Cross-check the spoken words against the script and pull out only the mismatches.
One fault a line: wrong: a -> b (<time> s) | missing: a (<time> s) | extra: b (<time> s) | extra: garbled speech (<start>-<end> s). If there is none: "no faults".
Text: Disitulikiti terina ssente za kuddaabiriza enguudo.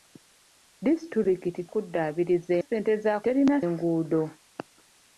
wrong: terina -> kuddaabiriza (1.7 s)
wrong: kuddaabiriza -> terina (3.2 s)